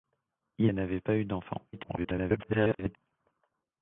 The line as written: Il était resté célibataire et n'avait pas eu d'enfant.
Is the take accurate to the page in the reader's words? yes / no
no